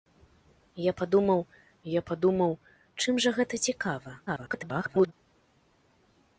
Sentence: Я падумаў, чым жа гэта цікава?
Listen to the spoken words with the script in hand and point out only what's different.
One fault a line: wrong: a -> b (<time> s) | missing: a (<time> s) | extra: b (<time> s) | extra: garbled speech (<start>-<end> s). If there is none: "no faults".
extra: я падумаў (1.9 s)
extra: garbled speech (4.3-5.1 s)